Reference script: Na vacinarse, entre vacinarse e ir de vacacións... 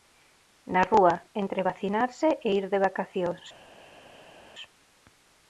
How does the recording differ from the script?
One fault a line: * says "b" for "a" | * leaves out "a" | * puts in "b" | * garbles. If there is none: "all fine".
* says "rúa" for "vacinarse"